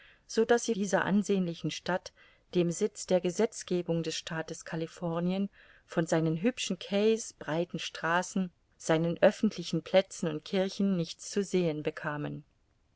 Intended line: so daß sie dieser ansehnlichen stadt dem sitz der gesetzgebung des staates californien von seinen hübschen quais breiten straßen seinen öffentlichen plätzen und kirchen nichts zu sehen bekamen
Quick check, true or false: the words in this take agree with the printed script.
true